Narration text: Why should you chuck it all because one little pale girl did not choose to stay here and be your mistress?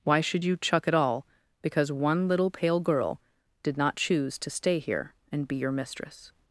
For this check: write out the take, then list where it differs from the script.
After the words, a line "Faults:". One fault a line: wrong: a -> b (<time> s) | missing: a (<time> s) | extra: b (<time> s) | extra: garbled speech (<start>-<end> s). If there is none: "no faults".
Why should you chuck it all because one little pale girl did not choose to stay here and be your mistress?
Faults:
no faults